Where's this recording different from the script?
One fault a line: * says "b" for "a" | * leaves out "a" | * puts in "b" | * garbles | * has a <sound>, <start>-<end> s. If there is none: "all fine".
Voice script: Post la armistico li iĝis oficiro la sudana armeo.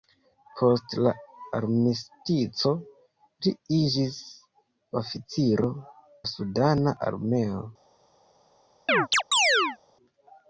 * has a chirp, 8.9-9.8 s